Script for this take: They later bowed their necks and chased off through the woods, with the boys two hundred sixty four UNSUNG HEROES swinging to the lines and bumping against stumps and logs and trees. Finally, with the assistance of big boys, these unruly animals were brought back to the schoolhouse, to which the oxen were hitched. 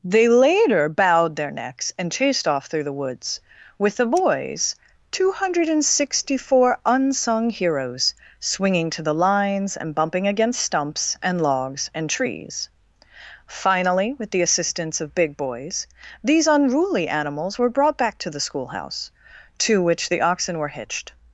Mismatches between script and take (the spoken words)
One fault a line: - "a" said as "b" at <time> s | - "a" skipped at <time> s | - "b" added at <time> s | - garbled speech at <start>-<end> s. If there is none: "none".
none